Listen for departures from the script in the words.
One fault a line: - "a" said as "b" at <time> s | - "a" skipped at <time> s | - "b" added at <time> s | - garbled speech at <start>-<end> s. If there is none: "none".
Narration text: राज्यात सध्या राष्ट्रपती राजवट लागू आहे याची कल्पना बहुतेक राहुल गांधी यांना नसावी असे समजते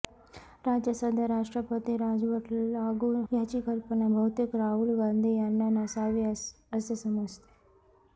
- "आहे" skipped at 3.1 s